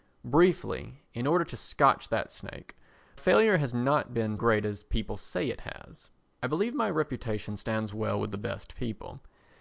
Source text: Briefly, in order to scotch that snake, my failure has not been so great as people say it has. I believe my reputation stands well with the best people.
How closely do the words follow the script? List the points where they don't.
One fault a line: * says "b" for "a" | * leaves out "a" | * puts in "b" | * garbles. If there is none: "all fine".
* leaves out "my"
* leaves out "so"